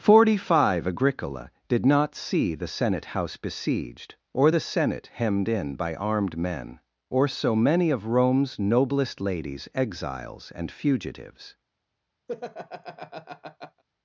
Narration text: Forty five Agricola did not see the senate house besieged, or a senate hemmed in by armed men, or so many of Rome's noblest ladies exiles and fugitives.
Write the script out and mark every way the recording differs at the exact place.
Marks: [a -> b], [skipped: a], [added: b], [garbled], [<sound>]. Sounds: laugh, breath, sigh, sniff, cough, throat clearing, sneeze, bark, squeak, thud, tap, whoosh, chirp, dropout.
Forty five Agricola did not see the senate house besieged, or [a -> the] senate hemmed in by armed men, or so many of Rome's noblest ladies exiles and fugitives. [laugh]